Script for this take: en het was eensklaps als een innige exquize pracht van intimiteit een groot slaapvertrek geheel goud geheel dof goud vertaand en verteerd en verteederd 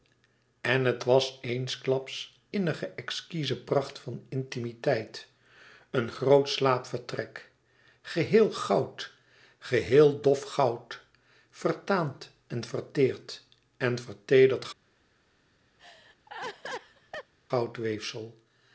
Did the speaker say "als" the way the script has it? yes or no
no